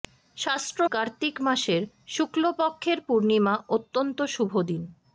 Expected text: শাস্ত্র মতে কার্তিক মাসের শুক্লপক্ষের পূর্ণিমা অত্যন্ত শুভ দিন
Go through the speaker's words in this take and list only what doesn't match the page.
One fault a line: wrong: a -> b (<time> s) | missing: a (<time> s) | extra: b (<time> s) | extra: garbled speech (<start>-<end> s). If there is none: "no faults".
missing: মতে (0.8 s)